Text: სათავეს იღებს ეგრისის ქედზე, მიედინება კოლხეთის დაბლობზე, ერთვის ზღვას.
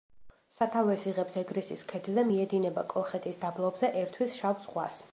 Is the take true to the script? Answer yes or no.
no